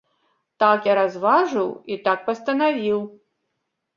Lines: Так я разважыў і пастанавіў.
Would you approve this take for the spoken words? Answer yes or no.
no